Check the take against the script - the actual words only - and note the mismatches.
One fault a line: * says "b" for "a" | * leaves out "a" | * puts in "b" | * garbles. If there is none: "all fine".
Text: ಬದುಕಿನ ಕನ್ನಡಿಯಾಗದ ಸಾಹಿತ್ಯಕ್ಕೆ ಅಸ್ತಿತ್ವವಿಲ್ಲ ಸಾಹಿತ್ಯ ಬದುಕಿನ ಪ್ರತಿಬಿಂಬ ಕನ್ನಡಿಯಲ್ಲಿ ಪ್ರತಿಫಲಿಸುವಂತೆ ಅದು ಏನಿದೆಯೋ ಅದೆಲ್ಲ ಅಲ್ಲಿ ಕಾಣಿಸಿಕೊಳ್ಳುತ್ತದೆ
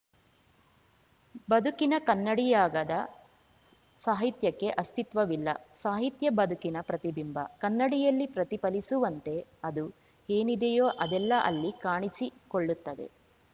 all fine